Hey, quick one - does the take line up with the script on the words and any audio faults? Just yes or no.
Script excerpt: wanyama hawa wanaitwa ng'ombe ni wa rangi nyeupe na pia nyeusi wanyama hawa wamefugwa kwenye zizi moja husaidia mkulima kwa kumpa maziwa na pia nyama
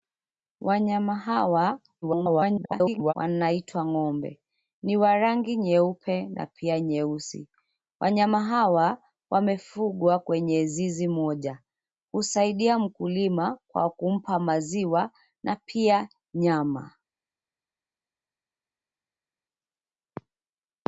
no